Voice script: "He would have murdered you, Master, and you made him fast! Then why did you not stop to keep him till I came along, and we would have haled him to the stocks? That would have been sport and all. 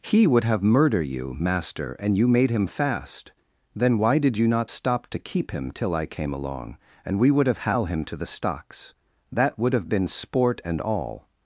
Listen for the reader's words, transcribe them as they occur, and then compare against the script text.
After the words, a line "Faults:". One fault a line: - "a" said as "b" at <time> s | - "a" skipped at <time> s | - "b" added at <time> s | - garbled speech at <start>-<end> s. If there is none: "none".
"He would have murder you, Master, and you made him fast! Then why did you not stop to keep him till I came along, and we would have hal him to the stocks? That would have been sport and all.
Faults:
- "murdered" said as "murder" at 0.6 s
- "haled" said as "hal" at 7.6 s